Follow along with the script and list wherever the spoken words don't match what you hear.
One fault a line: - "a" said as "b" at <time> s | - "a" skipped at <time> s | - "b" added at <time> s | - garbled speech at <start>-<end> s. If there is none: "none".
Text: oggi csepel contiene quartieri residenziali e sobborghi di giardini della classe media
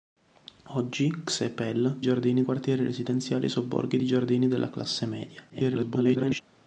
- "contiene" said as "giardini" at 2.0 s
- garbled speech at 5.5-6.4 s